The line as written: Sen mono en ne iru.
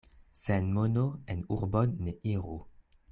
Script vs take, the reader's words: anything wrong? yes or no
yes